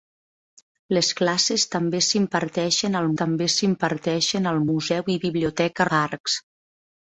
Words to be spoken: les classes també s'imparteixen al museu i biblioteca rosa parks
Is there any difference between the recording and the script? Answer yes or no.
yes